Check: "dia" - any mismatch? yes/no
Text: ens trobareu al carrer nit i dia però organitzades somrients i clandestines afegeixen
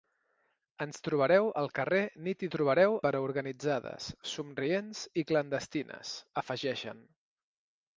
yes